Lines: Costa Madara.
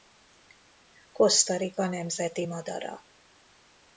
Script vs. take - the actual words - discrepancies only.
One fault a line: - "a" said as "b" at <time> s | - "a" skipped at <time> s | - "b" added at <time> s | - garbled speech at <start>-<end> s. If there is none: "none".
- "Rica nemzeti" added at 1.6 s